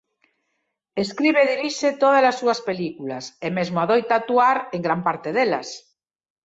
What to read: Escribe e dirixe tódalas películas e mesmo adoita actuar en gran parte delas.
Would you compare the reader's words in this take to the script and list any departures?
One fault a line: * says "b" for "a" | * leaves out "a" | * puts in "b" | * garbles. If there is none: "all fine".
* puts in "súas"